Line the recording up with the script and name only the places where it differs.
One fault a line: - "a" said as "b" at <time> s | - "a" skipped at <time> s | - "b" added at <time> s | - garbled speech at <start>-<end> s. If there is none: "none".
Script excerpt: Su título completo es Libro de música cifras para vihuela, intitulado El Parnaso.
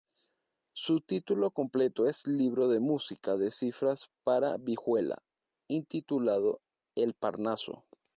- "de" added at 3.4 s